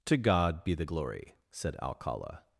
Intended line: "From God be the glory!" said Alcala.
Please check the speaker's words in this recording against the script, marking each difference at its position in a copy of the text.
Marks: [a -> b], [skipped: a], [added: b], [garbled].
["From -> To] God be the glory!" said Alcala.